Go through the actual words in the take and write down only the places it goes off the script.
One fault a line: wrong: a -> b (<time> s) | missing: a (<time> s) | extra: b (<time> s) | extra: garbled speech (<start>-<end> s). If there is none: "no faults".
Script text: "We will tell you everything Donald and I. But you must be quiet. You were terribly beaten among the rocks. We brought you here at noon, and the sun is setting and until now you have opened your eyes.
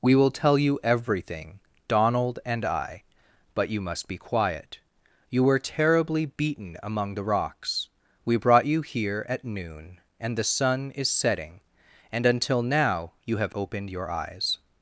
no faults